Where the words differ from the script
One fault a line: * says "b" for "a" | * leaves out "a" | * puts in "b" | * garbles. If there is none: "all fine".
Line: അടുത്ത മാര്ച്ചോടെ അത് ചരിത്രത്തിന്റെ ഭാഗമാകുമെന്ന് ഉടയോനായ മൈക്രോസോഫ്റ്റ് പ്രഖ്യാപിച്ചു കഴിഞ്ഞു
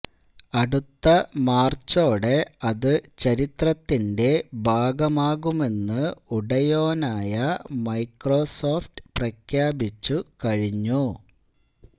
all fine